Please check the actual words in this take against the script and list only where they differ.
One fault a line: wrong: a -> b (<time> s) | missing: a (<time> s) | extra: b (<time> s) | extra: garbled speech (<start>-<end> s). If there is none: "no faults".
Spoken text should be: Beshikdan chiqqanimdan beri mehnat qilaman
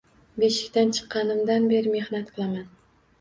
no faults